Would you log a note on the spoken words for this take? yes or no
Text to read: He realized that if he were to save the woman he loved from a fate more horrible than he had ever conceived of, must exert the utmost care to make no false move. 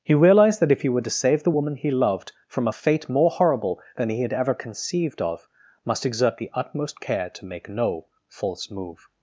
no